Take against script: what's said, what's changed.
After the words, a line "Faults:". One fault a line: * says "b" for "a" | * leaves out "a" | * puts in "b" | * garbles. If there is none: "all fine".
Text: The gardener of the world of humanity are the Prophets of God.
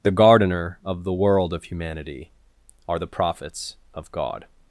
The gardener of the world of humanity are the Prophets of God.
Faults:
all fine